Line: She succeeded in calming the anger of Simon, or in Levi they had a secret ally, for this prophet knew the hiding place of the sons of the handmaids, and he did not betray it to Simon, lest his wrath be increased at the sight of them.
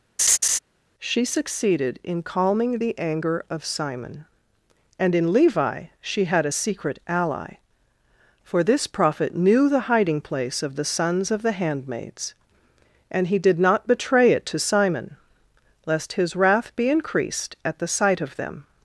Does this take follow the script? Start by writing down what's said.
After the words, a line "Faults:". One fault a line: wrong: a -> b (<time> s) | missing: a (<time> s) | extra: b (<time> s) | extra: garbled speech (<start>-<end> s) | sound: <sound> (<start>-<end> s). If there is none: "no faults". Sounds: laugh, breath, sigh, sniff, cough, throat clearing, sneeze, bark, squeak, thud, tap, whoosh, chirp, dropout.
She succeeded in calming the anger of Simon, and in Levi she had a secret ally, for this prophet knew the hiding place of the sons of the handmaids, and he did not betray it to Simon, lest his wrath be increased at the sight of them.
Faults:
sound: laugh (0.2-0.6 s)
wrong: or -> and (5.0 s)
wrong: they -> she (6.0 s)